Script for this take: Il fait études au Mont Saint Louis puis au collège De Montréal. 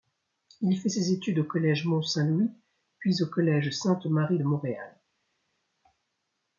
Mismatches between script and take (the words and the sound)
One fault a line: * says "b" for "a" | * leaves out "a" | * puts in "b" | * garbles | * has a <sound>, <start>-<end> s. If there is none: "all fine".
* puts in "ses"
* puts in "collège"
* puts in "Sainte Marie"